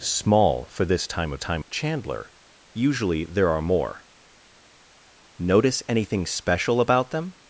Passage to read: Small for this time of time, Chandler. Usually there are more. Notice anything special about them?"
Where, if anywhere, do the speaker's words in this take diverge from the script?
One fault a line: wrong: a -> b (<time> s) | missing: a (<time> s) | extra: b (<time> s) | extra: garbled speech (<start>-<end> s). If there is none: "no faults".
no faults